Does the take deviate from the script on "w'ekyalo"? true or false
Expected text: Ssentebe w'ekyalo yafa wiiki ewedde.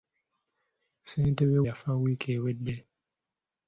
true